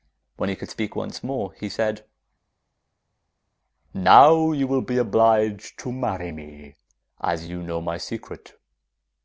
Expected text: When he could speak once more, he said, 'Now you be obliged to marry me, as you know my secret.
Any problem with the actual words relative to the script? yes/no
yes